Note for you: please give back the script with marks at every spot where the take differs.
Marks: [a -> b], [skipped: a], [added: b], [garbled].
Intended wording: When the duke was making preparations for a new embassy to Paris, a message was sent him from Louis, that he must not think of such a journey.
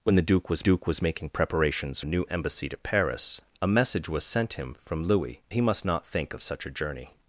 When the duke was [added: duke was] making preparations [skipped: for] a new embassy to Paris, a message was sent him from Louis, [skipped: that] he must not think of such a journey.